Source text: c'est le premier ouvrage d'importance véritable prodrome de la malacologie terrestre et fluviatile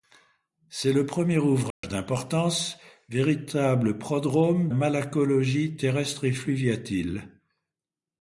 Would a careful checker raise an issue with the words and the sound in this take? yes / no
yes